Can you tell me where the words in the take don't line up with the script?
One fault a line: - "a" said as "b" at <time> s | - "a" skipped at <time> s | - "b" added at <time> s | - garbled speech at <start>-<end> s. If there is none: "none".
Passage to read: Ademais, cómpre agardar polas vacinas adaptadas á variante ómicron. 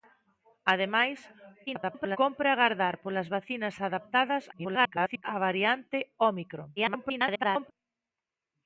- garbled speech at 1.7-2.2 s
- garbled speech at 4.5-5.2 s
- garbled speech at 6.8-7.7 s